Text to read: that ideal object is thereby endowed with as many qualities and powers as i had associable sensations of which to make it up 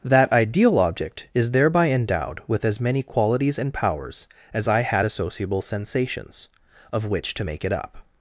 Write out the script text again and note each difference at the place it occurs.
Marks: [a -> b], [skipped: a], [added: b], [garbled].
that ideal object is thereby endowed with as many qualities and powers as i had associable sensations of which to make it up